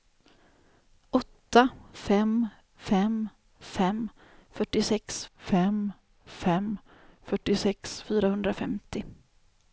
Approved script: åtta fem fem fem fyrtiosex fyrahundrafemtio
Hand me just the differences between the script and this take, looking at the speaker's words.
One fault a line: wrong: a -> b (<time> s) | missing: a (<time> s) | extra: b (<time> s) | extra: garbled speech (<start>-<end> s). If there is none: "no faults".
extra: fem fem fyrtiosex (5.4 s)